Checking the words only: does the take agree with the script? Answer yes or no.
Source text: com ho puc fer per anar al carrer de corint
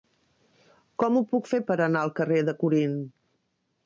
yes